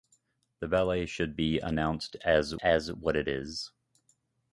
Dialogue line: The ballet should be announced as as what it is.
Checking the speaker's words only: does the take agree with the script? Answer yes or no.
yes